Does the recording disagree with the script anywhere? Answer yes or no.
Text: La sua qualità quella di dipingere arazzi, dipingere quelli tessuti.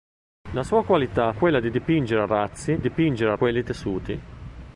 no